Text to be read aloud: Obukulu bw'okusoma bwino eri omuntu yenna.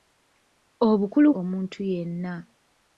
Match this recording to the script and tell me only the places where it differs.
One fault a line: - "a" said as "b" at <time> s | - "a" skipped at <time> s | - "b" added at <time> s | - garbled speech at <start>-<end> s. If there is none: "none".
- "bw'okusoma bwino eri" skipped at 1.3 s